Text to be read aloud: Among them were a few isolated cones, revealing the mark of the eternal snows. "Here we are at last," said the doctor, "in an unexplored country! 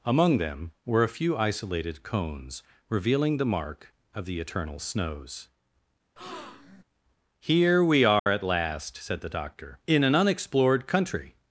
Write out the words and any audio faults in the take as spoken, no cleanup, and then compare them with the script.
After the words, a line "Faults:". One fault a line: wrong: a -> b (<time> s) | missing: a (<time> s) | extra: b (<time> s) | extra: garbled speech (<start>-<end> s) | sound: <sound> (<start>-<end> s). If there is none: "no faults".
Among them were a few isolated cones, revealing the mark of the eternal snows. "Here we are at last," said the doctor, "in an unexplored country!
Faults:
sound: breath (6.2-6.8 s)
sound: dropout (8.2-8.3 s)